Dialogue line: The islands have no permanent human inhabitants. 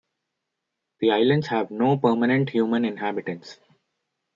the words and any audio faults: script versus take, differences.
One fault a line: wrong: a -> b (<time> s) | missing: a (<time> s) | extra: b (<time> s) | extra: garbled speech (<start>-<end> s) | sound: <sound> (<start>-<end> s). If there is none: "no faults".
no faults